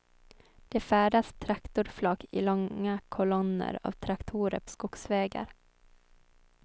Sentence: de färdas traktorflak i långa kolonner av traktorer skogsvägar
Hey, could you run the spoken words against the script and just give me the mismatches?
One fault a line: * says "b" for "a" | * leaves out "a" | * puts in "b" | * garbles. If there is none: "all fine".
all fine